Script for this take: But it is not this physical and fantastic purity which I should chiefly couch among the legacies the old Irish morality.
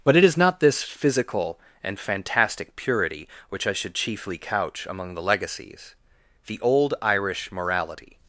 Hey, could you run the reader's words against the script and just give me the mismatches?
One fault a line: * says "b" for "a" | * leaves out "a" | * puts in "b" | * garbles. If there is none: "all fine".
all fine